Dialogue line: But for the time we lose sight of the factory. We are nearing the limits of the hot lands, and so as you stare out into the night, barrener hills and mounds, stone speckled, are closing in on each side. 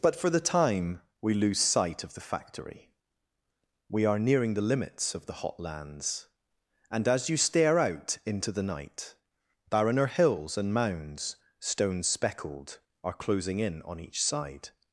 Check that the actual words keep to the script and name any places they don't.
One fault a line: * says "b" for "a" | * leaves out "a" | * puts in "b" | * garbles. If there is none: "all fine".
* leaves out "so"